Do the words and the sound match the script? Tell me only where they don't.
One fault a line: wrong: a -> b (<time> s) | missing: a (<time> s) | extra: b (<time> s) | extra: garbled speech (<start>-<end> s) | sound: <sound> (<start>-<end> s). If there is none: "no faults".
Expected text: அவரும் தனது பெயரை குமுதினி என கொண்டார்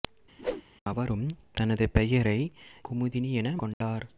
sound: whoosh (0.4-0.6 s)
sound: dropout (3.7-3.8 s)